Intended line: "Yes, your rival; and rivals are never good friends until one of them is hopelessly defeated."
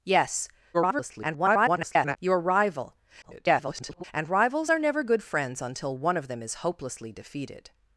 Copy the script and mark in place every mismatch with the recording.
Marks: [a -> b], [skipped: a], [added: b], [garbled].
"Yes, [garbled] your rival; [garbled] and rivals are never good friends until one of them is hopelessly defeated."